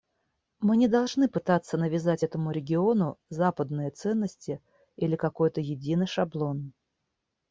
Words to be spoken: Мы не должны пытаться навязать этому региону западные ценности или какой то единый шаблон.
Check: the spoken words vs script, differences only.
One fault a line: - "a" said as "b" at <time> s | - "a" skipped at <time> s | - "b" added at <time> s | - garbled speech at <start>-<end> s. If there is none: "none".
none